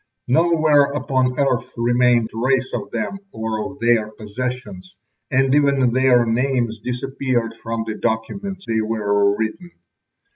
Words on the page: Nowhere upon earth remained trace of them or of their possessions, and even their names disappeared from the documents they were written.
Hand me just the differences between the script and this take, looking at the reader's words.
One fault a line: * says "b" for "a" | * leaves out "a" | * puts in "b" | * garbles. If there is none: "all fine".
all fine